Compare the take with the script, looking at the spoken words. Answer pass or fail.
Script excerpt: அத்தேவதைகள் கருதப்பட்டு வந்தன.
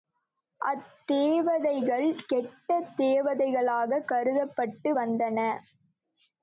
fail